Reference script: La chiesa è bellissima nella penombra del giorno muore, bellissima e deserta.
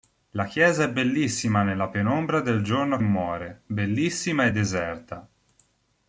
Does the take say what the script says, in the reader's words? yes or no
yes